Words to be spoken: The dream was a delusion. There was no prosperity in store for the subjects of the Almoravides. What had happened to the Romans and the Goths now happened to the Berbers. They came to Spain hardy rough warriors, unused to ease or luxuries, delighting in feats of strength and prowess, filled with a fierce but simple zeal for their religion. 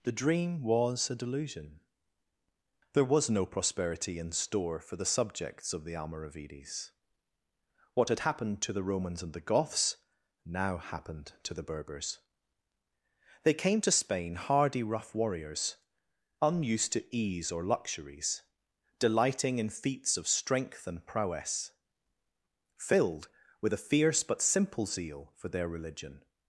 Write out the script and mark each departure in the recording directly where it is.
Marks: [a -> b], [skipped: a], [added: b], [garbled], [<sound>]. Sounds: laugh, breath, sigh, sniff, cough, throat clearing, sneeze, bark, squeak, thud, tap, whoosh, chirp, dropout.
The dream was a delusion. There was no prosperity in store for the subjects of the Almoravides. What had happened to the Romans and the Goths now happened to the Berbers. They came to Spain hardy rough warriors, unused to ease or luxuries, delighting in feats of strength and prowess, filled with a fierce but simple zeal for their religion.